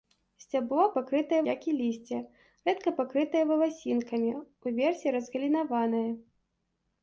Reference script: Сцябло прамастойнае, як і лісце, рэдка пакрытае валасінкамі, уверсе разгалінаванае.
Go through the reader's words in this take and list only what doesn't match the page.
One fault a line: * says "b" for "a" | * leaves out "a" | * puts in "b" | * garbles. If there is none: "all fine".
* says "пакрытае" for "прамастойнае"